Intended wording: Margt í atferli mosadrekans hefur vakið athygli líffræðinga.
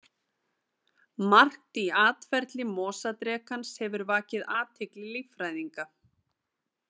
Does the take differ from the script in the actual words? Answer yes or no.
no